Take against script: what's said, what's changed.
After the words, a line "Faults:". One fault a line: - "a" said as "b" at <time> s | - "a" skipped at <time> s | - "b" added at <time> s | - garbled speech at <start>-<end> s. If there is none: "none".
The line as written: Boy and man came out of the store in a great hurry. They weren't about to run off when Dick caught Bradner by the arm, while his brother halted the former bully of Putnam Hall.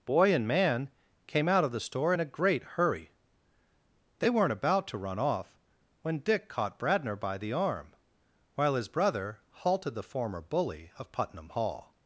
Boy and man came out of the store in a great hurry. They weren't about to run off when Dick caught Bradner by the arm, while his brother halted the former bully of Putnam Hall.
Faults:
none